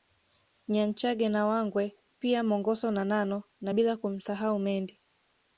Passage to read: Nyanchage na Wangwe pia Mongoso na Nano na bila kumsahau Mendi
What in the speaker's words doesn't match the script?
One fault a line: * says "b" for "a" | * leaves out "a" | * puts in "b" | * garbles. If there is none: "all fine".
all fine